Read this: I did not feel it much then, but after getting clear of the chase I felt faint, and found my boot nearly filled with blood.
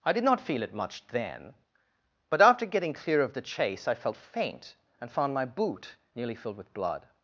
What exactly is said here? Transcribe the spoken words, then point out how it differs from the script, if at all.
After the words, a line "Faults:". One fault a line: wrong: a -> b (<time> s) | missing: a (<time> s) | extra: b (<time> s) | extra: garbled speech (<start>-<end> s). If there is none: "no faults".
I did not feel it much then, but after getting clear of the chase I felt faint, and found my boot nearly filled with blood.
Faults:
no faults